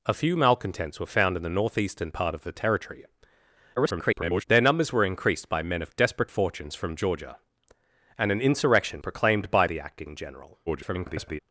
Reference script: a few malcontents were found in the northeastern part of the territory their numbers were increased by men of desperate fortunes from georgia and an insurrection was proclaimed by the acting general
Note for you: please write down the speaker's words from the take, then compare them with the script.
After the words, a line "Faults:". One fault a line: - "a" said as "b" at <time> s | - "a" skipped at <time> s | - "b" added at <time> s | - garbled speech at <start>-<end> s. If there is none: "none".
a few malcontents were found in the northeastern part of the territory [garbled] their numbers were increased by men of desperate fortunes from georgia and an insurrection proclaimed by the acting general [garbled]
Faults:
- garbled speech at 3.8-4.5 s
- "was" skipped at 9.0 s
- garbled speech at 10.7-11.4 s